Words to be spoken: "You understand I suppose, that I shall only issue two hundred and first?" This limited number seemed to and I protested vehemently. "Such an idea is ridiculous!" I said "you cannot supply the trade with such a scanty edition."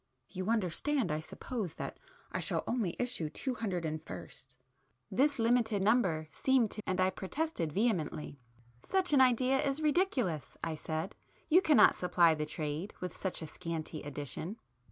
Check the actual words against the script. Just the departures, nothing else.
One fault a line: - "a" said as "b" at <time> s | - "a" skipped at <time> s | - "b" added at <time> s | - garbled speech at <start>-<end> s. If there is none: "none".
none